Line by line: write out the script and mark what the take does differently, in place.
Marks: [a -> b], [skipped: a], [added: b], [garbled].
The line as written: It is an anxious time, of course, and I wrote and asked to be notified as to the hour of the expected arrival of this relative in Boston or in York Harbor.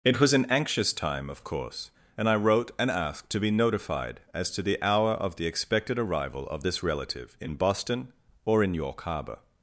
It [is -> was] an anxious time, of course, and I wrote and asked to be notified as to the hour of the expected arrival of this relative in Boston or in York Harbor.